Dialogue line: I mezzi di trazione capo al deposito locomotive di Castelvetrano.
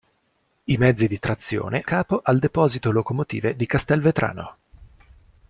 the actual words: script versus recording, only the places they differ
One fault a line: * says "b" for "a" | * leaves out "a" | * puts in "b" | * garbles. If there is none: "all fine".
all fine